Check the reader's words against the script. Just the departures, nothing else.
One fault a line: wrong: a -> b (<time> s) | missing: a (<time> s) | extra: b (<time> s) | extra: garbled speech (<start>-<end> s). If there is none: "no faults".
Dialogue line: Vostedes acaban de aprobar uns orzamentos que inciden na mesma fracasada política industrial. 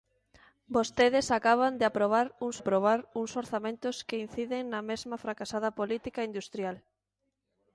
extra: aprobar uns (2.6 s)